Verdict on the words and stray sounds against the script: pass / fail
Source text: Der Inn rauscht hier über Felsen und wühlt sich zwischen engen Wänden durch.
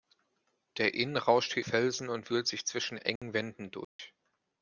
fail